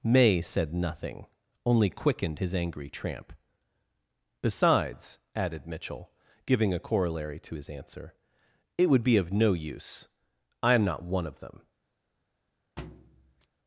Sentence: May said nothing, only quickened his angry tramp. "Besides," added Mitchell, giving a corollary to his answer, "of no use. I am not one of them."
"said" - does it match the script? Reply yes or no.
yes